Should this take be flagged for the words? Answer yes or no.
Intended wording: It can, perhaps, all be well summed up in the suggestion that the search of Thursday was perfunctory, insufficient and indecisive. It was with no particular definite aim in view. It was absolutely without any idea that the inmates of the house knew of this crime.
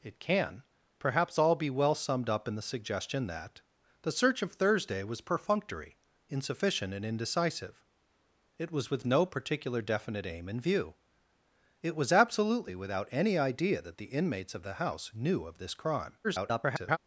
yes